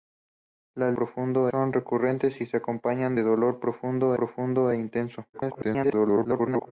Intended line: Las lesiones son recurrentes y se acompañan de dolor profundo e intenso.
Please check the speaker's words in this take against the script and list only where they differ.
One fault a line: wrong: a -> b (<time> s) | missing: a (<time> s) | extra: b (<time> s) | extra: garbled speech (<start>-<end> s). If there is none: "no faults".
wrong: lesiones -> profundo (0.9 s)
extra: profundo (4.1 s)
extra: garbled speech (5.3-6.7 s)